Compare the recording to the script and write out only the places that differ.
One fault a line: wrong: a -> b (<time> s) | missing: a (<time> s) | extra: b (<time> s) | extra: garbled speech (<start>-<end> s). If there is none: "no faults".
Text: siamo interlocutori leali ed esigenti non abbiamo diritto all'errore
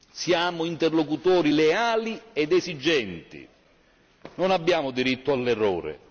no faults